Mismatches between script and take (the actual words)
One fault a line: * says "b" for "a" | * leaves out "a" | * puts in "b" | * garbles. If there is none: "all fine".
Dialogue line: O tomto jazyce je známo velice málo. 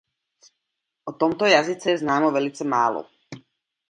all fine